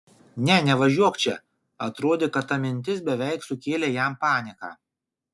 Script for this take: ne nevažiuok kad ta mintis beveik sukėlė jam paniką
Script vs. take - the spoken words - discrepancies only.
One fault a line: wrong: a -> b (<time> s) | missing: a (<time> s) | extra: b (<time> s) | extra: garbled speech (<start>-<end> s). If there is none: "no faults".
extra: čia atrodė (1.2 s)